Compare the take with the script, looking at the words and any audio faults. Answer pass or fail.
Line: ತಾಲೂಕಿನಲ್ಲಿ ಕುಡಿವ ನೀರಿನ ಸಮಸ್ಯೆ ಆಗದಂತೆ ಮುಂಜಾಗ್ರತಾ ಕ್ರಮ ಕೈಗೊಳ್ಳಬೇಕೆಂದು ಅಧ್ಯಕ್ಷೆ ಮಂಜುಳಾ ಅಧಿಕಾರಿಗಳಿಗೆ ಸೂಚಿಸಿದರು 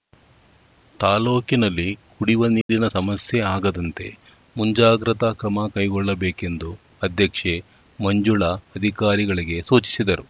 fail